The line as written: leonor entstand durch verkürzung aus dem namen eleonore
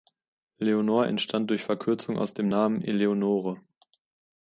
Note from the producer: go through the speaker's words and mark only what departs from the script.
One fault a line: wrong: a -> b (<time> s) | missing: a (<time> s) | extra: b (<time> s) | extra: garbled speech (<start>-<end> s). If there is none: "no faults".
no faults